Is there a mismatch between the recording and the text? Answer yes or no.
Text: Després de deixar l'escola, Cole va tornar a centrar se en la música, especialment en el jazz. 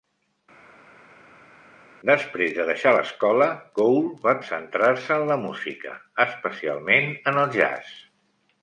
yes